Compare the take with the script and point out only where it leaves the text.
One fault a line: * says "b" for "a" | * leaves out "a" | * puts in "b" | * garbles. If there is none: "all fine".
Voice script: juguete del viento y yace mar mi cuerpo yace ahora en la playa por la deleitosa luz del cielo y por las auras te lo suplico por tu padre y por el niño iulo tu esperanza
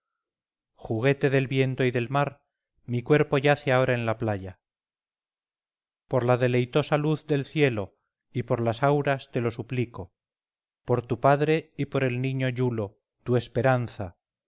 * says "del" for "yace"